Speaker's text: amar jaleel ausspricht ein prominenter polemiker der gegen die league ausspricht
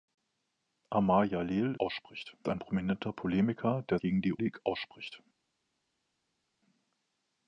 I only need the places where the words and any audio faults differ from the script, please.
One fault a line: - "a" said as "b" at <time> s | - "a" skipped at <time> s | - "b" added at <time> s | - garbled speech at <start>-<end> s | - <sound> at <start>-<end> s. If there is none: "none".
none